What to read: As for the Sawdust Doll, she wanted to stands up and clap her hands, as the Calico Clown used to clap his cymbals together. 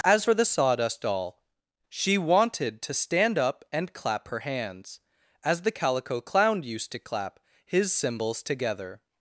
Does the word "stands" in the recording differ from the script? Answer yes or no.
yes